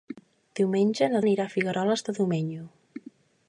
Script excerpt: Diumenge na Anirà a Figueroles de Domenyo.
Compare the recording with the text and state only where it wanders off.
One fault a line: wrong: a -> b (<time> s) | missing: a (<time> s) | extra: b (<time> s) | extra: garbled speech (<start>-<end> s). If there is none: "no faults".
no faults